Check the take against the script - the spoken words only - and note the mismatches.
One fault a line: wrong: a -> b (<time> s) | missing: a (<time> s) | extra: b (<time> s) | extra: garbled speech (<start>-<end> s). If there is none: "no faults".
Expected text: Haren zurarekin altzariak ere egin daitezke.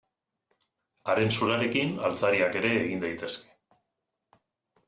no faults